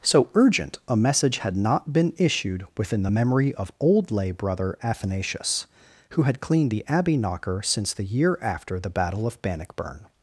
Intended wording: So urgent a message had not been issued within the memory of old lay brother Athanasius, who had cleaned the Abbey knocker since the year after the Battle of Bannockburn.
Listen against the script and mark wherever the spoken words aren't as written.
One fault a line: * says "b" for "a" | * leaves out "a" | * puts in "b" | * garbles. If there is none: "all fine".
all fine